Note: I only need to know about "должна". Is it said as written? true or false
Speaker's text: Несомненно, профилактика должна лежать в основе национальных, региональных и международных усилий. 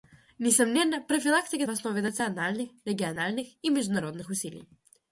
false